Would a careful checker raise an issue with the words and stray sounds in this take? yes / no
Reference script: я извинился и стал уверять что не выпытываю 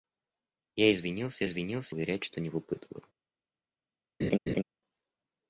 yes